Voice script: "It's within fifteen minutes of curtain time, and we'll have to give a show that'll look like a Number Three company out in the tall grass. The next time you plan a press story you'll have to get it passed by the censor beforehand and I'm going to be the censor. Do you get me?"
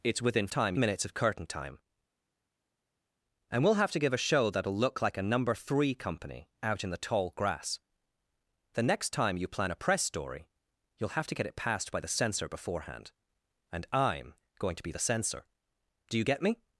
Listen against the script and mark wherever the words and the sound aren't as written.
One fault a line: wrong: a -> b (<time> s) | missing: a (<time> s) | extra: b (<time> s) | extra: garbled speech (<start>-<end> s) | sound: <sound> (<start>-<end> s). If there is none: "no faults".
wrong: fifteen -> time (0.5 s)